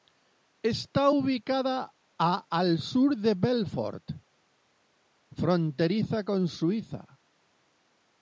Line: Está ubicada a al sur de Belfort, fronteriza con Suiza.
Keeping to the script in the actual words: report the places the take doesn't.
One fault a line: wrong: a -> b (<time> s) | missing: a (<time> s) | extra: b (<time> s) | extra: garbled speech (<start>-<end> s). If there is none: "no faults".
no faults